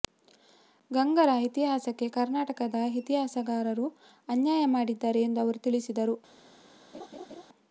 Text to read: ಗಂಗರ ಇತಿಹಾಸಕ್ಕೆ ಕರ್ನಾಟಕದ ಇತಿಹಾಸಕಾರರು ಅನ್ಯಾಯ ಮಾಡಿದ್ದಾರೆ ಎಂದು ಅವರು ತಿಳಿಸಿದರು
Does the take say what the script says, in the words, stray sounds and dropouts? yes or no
no